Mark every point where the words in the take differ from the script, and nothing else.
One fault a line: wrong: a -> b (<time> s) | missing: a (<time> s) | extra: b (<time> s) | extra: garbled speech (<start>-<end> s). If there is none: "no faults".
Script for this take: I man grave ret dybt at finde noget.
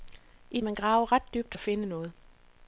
no faults